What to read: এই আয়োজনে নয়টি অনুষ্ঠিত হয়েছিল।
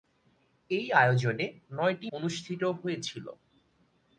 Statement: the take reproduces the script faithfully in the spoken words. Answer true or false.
true